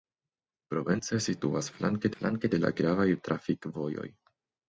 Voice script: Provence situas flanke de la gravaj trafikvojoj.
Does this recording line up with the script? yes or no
no